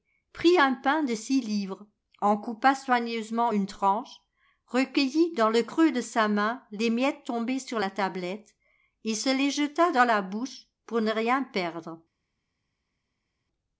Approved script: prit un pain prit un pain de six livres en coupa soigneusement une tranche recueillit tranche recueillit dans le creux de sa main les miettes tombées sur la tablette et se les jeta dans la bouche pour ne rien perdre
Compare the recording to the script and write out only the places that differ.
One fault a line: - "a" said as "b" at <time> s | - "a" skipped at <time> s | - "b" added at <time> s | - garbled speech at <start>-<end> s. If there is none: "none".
- "prit un pain" skipped at 1.0 s
- "tranche recueillit" skipped at 5.3 s